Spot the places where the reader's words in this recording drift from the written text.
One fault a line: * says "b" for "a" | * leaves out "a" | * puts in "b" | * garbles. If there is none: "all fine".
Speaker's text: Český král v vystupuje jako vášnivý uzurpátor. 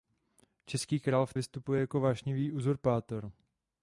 all fine